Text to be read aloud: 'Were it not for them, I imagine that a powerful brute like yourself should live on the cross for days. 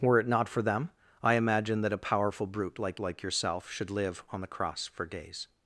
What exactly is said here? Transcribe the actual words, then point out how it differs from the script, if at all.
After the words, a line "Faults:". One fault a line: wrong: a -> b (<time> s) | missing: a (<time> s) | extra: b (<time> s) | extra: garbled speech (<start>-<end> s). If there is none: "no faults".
'Were it not for them, I imagine that a powerful brute like like yourself should live on the cross for days.
Faults:
extra: like (3.0 s)